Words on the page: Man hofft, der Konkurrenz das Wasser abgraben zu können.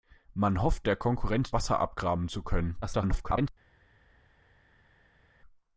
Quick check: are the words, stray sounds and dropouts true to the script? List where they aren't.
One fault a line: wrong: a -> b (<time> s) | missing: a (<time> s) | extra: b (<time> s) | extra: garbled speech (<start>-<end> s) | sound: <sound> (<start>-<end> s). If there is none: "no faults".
missing: das (1.5 s)
extra: garbled speech (2.8-3.5 s)